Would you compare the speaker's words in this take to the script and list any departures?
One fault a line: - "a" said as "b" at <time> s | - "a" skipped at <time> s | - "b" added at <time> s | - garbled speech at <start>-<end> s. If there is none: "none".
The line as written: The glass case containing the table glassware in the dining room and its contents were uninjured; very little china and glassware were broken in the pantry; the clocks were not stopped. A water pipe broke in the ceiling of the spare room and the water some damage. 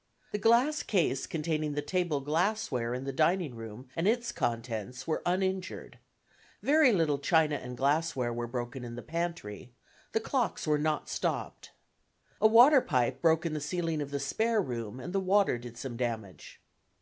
- "did" added at 15.6 s